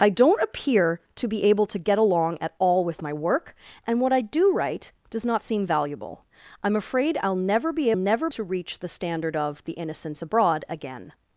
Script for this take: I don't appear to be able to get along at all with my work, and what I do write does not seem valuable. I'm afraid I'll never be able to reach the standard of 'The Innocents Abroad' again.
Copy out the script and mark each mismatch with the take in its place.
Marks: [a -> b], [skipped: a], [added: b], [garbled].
I don't appear to be able to get along at all with my work, and what I do write does not seem valuable. I'm afraid I'll never be [able -> never] to reach the standard of 'The Innocents Abroad' again.